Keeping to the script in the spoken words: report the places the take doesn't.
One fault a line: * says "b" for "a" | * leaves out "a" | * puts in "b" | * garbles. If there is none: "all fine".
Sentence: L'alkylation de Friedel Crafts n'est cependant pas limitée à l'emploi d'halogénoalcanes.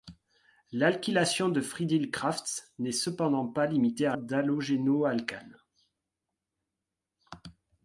* leaves out "l'emploi"